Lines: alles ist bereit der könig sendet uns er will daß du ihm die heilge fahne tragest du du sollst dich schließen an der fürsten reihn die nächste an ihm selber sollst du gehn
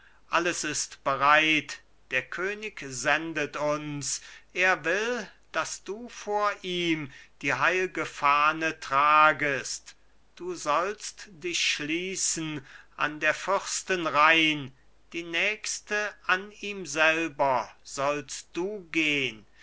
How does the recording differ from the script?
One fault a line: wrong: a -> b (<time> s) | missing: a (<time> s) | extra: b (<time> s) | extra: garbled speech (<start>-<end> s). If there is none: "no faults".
extra: vor (6.1 s)
missing: du (10.6 s)